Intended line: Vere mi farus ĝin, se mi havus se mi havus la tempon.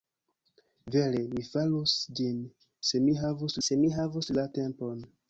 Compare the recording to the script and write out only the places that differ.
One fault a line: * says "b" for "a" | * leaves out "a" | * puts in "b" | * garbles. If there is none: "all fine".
all fine